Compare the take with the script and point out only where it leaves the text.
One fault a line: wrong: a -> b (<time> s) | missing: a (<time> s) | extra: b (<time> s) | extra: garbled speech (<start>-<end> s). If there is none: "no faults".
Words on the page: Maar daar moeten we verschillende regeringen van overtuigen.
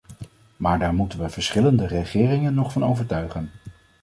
extra: nog (2.5 s)